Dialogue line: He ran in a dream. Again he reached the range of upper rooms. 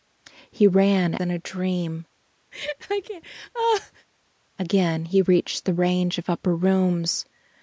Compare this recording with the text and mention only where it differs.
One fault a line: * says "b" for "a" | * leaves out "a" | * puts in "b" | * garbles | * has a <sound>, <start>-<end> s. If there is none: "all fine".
* has a laugh, 2.5-4.1 s